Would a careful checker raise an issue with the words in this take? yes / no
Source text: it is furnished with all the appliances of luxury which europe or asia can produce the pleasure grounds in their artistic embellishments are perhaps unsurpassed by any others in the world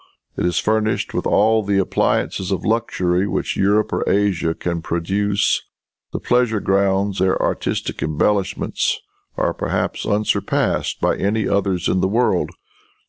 yes